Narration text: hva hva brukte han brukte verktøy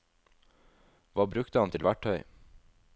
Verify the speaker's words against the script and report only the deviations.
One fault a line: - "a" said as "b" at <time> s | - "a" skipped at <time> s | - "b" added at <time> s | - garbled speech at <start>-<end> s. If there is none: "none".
- "hva" skipped at 1.3 s
- "brukte" said as "til" at 1.7 s